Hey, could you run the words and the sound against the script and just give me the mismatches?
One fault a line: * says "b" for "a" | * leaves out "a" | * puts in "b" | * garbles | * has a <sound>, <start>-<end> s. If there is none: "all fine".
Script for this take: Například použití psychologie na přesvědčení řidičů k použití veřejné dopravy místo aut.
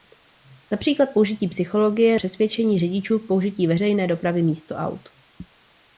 * leaves out "na"